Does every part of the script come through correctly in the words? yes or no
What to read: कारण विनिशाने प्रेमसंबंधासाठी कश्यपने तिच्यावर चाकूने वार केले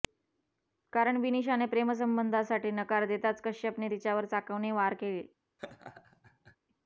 no